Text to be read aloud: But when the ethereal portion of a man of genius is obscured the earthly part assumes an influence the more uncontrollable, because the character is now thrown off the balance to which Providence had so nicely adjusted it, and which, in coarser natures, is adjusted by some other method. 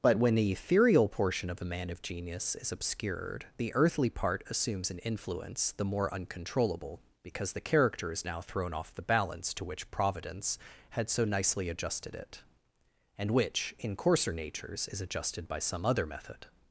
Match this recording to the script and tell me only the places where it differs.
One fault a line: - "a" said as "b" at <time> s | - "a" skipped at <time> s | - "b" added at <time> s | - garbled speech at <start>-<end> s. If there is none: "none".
none